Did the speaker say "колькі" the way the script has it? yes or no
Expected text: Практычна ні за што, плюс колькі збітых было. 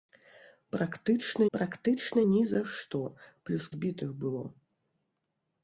no